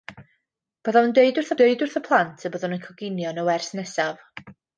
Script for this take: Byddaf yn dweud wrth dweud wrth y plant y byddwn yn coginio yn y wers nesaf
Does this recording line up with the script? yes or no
yes